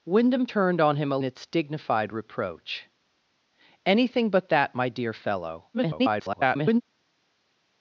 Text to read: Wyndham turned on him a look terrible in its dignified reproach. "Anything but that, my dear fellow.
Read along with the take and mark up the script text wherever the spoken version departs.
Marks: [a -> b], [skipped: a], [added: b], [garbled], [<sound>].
Wyndham turned on him a [skipped: look terrible in] its dignified reproach. "Anything but that, my dear fellow. [garbled]